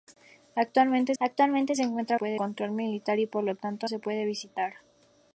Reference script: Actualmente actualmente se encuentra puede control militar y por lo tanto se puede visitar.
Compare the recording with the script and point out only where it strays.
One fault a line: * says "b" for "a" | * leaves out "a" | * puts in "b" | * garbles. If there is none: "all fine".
all fine